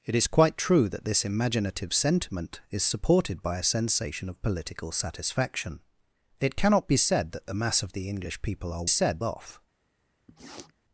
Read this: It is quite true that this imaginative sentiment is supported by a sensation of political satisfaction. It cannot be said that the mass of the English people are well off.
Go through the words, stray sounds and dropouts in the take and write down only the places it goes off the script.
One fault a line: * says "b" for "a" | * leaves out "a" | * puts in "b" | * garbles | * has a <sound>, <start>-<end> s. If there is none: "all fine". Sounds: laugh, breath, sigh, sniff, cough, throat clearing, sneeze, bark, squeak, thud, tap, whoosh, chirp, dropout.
* says "said" for "well"
* has a sniff, 10.3-10.7 s